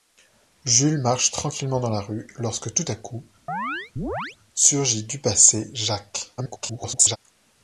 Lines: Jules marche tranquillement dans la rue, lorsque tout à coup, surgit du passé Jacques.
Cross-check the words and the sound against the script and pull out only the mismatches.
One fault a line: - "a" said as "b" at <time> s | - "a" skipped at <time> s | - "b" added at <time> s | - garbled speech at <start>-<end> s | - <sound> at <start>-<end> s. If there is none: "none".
- chirp at 3.5-4.4 s
- garbled speech at 6.4-7.2 s